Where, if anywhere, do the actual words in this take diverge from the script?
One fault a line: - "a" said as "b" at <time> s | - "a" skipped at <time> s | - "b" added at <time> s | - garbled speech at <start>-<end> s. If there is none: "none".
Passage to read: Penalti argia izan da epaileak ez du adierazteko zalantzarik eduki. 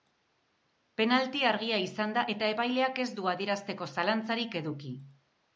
- "eta" added at 2.3 s